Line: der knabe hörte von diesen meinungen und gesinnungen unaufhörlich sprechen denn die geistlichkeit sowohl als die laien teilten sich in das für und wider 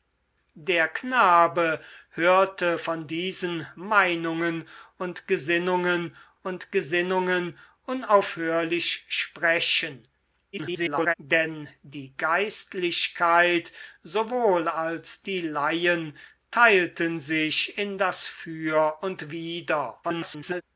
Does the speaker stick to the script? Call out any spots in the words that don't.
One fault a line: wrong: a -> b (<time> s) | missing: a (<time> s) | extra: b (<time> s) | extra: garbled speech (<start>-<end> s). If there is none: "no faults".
extra: und gesinnungen (6.4 s)
extra: garbled speech (10.5-11.1 s)
extra: garbled speech (20.0-20.6 s)